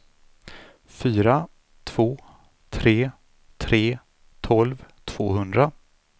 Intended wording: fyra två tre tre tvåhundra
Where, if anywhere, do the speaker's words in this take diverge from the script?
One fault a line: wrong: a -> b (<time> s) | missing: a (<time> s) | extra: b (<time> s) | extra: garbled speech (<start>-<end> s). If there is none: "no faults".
extra: tolv (4.4 s)